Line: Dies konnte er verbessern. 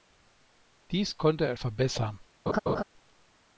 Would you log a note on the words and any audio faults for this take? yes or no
yes